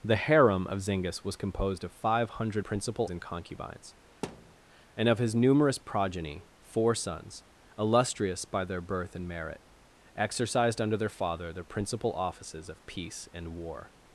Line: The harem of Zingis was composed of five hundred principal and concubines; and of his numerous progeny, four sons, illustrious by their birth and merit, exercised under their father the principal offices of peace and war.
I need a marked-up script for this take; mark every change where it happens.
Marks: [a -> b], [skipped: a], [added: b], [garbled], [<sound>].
The harem of Zingis was composed of five hundred principal and concubines; [thud] and of his numerous progeny, four sons, illustrious by their birth and merit, exercised under their father the principal offices of peace and war.